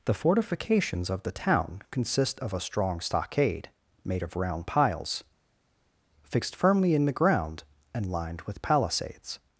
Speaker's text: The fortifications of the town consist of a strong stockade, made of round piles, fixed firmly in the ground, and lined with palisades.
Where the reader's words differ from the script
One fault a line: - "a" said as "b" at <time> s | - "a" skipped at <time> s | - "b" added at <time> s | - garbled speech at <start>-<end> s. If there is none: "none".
none